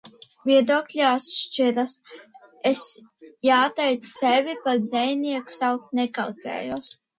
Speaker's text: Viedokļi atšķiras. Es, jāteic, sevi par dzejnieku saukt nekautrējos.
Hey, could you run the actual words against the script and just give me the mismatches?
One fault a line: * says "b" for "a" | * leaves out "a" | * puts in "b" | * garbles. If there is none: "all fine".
all fine